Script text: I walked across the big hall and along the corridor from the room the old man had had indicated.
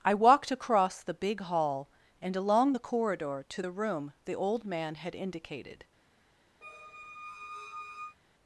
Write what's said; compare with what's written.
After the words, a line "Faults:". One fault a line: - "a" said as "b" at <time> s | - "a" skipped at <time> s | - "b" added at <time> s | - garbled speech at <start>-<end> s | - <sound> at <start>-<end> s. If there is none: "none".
I walked across the big hall and along the corridor to the room the old man had indicated.
Faults:
- "from" said as "to" at 3.5 s
- "had" skipped at 5.1 s
- squeak at 6.6-8.2 s